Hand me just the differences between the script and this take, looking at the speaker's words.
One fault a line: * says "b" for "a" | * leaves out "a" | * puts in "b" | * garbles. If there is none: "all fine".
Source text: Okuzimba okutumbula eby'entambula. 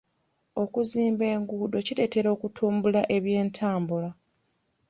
* puts in "enguudo kireetera"